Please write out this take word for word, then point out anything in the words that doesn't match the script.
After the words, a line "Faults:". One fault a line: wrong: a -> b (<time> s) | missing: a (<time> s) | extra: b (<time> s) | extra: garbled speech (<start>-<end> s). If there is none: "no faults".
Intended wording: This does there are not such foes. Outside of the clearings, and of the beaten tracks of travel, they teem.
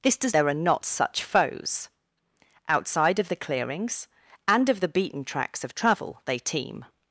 This does there are not such foes. Outside of the clearings, and of the beaten tracks of travel, they teem.
Faults:
no faults